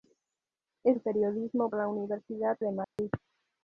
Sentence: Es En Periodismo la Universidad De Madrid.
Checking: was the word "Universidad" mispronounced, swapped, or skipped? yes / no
no